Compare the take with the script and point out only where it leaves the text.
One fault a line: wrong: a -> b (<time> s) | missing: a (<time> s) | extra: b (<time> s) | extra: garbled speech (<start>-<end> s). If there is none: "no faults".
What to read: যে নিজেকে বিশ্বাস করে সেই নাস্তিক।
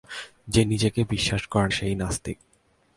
no faults